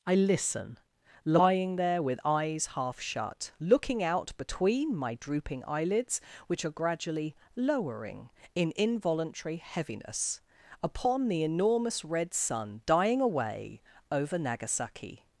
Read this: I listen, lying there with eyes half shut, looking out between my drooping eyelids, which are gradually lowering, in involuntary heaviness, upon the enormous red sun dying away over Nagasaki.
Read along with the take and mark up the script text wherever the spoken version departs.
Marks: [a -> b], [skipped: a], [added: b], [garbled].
I listen, lying there with eyes half shut, looking out between my drooping eyelids, which are gradually lowering, in involuntary heaviness, upon the enormous red sun dying away over Nagasaki.